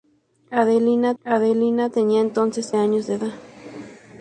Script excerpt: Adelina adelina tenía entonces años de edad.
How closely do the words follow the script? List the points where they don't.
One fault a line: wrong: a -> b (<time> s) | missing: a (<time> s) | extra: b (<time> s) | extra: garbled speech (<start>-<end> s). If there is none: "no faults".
no faults